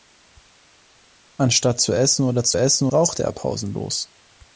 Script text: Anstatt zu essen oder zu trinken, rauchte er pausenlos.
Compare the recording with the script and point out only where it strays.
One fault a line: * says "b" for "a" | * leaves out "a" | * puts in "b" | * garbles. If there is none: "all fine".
* says "essen" for "trinken"